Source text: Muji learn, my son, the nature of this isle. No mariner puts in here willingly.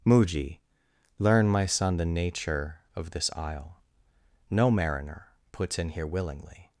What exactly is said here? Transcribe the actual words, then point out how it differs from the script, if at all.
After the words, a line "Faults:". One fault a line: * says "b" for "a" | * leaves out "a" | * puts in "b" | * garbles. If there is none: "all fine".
Muji learn, my son, the nature of this isle. No mariner puts in here willingly.
Faults:
all fine